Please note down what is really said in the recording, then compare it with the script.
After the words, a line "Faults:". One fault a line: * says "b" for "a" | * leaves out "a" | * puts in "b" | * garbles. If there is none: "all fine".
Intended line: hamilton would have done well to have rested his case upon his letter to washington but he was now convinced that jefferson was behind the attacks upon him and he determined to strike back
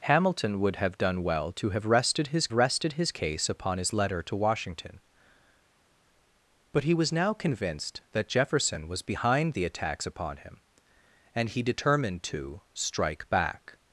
hamilton would have done well to have rested his rested his case upon his letter to washington but he was now convinced that jefferson was behind the attacks upon him and he determined to strike back
Faults:
* puts in "rested his"